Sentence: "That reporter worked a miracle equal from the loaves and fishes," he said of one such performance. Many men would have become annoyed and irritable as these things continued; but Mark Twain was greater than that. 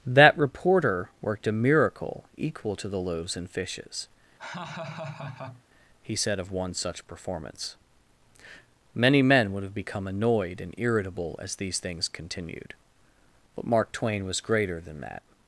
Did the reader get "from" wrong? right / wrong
wrong